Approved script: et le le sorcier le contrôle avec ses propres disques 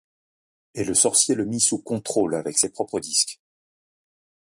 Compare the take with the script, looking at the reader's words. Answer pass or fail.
fail